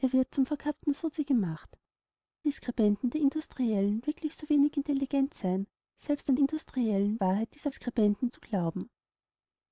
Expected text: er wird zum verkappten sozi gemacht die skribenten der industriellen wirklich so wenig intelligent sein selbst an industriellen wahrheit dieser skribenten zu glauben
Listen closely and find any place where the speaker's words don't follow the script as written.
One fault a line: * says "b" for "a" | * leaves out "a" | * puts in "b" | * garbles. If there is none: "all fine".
all fine